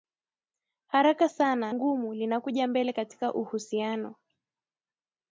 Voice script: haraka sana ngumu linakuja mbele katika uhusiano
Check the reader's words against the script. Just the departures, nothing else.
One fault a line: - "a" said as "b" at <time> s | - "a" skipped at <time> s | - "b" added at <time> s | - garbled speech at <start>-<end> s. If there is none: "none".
none